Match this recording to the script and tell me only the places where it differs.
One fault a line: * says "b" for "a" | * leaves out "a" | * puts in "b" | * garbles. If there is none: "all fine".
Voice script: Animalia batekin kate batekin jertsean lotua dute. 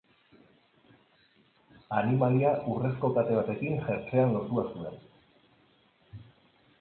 * says "urrezko" for "batekin"
* says "zuen" for "dute"